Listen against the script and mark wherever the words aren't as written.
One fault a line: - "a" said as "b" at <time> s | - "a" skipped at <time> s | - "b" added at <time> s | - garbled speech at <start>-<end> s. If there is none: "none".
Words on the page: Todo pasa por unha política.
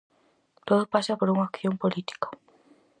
- "acción" added at 1.5 s